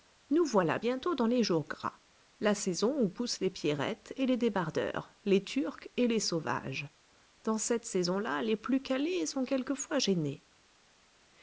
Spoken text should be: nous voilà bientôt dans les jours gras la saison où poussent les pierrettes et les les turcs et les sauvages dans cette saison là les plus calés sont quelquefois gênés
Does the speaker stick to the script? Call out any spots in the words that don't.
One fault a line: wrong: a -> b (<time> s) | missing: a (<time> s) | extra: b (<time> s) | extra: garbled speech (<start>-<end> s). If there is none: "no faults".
extra: débardeurs (4.4 s)